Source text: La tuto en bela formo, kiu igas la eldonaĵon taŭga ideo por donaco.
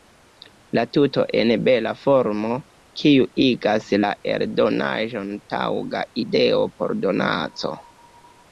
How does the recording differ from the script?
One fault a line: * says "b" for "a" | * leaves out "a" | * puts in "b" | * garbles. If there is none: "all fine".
all fine